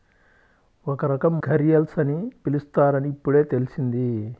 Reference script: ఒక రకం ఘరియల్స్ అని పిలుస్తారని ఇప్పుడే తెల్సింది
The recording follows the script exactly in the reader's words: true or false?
true